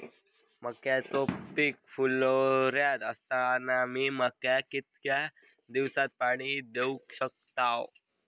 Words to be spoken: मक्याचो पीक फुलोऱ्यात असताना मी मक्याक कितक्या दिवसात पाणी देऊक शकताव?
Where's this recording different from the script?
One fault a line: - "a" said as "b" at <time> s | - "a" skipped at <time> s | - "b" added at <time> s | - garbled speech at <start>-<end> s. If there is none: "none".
none